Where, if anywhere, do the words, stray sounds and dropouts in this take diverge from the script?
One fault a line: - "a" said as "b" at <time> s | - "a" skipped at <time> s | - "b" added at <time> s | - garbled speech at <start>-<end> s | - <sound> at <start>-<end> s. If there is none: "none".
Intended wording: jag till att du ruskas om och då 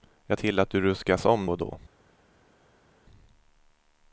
none